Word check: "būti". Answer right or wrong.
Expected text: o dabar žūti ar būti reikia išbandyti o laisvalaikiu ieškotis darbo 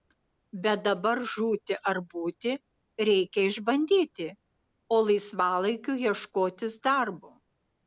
right